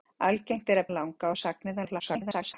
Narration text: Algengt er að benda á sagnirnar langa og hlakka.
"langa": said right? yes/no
no